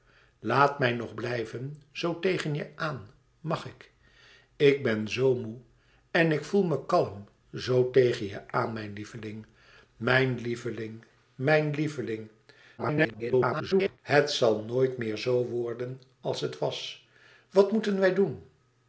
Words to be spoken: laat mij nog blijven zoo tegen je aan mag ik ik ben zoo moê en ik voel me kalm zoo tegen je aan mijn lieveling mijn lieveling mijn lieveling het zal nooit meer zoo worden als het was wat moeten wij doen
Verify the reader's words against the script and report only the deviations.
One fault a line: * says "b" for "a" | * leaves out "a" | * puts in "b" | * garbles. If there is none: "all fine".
* garbles